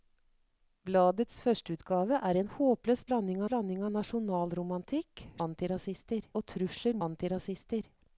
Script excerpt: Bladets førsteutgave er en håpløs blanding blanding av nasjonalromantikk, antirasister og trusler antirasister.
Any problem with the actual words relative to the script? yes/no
no